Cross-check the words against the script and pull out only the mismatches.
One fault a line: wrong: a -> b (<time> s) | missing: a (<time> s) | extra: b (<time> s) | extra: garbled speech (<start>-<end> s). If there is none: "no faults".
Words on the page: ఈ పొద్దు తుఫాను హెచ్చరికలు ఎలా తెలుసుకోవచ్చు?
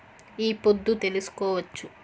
missing: తుఫాను హెచ్చరికలు ఎలా (0.9 s)